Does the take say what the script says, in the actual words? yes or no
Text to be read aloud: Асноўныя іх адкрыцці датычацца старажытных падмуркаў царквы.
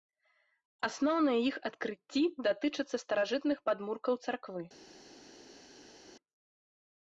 yes